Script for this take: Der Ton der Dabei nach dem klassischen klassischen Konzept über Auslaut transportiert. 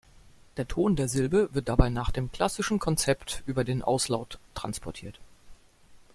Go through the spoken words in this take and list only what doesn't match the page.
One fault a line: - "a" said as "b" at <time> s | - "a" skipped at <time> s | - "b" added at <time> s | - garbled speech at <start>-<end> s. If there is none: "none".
- "Silbe wird" added at 1.1 s
- "klassischen" skipped at 2.8 s
- "den" added at 3.6 s